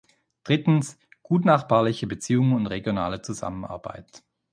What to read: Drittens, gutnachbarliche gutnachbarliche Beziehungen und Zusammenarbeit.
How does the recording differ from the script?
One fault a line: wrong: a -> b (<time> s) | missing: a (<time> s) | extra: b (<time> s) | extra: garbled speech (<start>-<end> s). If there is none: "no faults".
missing: gutnachbarliche (2.1 s)
extra: regionale (2.6 s)